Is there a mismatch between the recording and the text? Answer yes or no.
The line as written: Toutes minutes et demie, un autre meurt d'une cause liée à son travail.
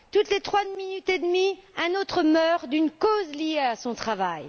yes